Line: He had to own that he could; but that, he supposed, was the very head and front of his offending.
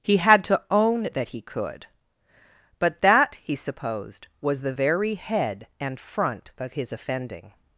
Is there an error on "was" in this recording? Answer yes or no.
no